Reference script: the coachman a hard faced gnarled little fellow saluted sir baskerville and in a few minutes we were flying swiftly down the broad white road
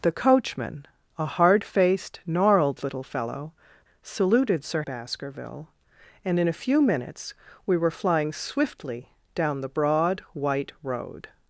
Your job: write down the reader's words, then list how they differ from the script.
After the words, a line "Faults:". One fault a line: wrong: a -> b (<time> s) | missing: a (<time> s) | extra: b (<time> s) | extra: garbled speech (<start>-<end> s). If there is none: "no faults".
the coachman a hard faced gnarled little fellow saluted sir baskerville and in a few minutes we were flying swiftly down the broad white road
Faults:
no faults